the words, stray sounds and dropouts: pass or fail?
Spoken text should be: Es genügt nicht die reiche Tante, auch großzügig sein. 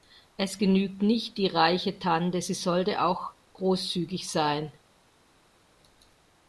fail